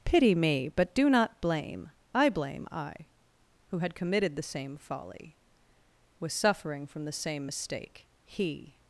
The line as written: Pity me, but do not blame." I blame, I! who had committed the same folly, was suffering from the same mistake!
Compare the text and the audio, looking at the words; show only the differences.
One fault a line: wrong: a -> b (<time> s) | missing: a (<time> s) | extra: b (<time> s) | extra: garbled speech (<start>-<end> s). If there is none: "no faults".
extra: He (8.3 s)